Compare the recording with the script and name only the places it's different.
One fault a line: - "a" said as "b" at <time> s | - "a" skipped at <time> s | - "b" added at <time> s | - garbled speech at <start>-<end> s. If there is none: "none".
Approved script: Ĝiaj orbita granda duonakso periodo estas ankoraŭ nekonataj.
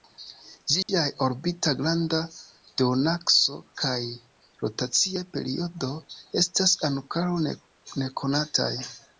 - "kaj rotacia" added at 3.8 s